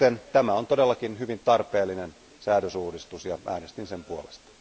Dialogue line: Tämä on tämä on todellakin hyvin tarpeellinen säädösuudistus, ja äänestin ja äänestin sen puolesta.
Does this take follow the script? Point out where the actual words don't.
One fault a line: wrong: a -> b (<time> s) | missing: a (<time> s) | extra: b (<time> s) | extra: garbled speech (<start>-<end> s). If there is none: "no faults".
missing: tämä on (0.7 s)
missing: ja äänestin (3.9 s)